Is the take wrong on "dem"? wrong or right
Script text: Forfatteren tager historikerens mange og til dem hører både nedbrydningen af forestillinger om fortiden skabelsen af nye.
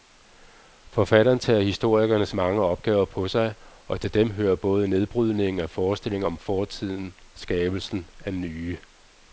right